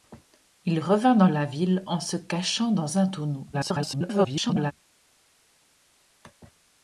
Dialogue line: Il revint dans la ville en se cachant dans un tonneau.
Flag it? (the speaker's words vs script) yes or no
yes